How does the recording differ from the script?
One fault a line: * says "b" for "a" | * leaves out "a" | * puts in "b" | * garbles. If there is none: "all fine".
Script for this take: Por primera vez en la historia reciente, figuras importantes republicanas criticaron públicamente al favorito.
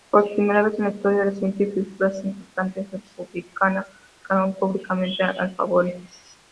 all fine